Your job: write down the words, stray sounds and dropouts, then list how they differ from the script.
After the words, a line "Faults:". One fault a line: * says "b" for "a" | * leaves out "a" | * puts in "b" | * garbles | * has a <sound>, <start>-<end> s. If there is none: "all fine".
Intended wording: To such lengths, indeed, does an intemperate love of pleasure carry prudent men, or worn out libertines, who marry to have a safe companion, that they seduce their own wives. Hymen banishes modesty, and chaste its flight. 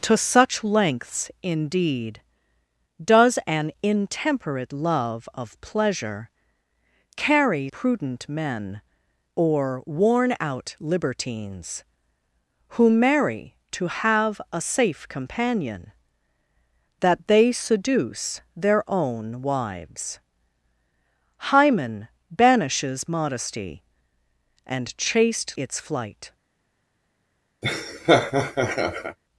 To such lengths, indeed, does an intemperate love of pleasure carry prudent men, or worn out libertines, who marry to have a safe companion, that they seduce their own wives. Hymen banishes modesty, and chaste its flight.
Faults:
* has a laugh, 27.6-29.2 s